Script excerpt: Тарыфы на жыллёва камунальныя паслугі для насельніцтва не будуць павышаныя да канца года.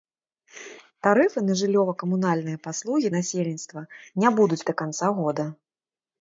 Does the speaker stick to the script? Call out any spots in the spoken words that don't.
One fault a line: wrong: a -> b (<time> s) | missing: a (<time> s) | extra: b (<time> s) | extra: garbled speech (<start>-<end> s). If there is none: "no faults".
missing: для (3.1 s)
missing: павышаныя (4.6 s)